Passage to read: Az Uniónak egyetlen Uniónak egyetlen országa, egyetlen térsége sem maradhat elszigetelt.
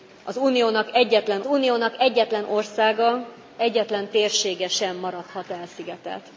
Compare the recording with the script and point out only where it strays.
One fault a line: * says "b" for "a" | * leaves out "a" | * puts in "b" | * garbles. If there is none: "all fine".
all fine